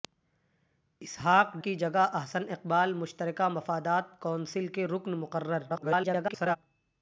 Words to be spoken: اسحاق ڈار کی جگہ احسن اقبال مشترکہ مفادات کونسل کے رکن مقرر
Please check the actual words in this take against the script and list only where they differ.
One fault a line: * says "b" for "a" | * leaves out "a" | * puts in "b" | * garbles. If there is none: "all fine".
* leaves out "ڈار"
* garbles